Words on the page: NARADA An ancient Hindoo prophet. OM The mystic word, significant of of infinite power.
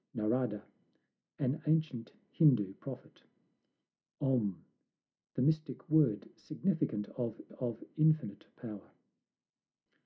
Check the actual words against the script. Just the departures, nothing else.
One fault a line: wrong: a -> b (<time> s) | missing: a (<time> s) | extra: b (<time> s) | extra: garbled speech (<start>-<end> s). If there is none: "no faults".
no faults